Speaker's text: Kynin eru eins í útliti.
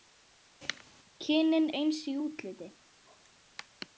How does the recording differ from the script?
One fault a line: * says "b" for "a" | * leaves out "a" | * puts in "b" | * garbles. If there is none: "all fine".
* leaves out "eru"